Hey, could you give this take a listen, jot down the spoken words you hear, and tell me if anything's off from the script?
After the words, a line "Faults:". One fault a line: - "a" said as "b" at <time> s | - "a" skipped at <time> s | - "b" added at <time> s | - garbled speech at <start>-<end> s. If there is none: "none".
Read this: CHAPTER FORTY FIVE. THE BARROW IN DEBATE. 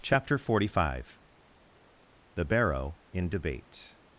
CHAPTER FORTY FIVE. THE BARROW IN DEBATE.
Faults:
none